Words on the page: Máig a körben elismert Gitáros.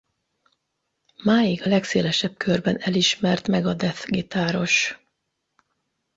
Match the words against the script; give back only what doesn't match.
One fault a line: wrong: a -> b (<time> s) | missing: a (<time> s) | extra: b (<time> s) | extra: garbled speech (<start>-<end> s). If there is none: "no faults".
extra: legszélesebb (1.7 s)
extra: Megadeth (3.5 s)